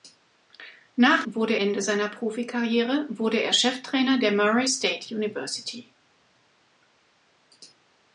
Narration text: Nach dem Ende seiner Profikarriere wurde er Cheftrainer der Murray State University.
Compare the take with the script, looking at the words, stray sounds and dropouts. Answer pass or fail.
fail